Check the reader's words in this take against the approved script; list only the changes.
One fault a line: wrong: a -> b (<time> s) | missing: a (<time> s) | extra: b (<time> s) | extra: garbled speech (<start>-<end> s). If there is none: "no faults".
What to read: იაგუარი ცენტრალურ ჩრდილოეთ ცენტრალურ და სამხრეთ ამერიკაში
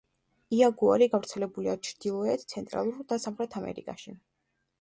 wrong: ცენტრალურ -> გავრცელებულია (1.1 s)